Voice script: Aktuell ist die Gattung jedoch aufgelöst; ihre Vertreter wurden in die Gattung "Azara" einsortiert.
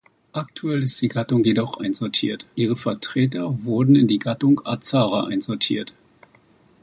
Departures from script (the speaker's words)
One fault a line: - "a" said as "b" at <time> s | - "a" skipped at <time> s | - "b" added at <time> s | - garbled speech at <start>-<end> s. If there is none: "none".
- "aufgelöst" said as "einsortiert" at 1.8 s